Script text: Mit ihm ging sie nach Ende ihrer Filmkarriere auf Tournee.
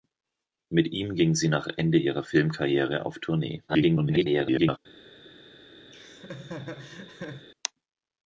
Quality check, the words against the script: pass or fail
fail